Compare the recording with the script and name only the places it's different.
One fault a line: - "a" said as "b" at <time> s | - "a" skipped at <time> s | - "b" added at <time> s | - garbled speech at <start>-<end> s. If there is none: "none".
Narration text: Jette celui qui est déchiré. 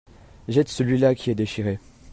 - "là" added at 1.0 s